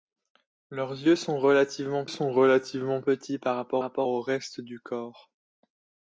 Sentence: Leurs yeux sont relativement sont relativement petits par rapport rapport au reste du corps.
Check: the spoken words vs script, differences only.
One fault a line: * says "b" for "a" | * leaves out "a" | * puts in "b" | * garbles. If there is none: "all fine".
all fine